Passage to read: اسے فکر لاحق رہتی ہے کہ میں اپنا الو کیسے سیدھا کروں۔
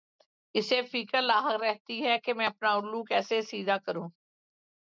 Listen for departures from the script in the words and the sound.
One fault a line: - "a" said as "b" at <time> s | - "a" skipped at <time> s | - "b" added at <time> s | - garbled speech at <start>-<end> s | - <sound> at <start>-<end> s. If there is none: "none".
none